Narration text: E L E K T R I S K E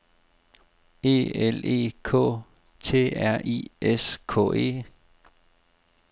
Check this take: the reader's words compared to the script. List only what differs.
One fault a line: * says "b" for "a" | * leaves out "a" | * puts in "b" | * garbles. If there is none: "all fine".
all fine